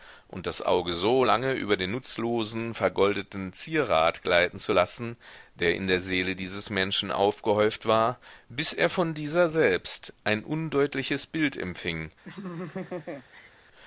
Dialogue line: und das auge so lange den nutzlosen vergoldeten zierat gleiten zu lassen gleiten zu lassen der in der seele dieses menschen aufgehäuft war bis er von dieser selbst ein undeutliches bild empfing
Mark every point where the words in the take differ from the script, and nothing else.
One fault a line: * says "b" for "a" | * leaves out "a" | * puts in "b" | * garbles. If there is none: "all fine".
* puts in "über"
* leaves out "gleiten zu lassen"